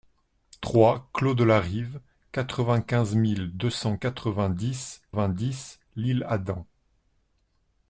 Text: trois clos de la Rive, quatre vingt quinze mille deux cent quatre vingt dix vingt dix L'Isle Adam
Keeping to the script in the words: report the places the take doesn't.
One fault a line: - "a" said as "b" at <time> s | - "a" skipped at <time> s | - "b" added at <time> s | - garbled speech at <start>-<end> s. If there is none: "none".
none